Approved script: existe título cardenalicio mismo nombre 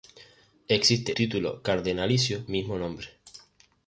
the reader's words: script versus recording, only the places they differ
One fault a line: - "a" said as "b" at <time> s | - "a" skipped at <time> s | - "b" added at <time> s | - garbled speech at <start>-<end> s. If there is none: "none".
none